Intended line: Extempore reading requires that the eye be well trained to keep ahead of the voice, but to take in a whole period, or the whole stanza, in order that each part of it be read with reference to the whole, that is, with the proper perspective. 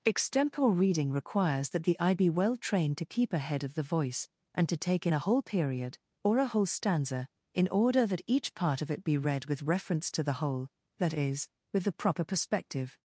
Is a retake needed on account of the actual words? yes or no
yes